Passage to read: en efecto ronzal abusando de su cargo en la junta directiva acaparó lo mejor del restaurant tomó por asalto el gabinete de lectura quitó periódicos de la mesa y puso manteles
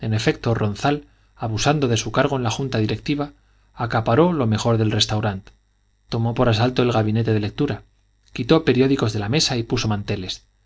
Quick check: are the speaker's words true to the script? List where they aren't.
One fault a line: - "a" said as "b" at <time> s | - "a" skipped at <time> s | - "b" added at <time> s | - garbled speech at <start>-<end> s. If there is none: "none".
none